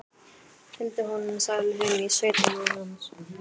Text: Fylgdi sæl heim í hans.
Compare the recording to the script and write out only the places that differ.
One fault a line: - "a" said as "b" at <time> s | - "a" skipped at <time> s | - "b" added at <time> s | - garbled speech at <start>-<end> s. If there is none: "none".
- "honum" added at 1.1 s
- "sveitina" added at 2.2 s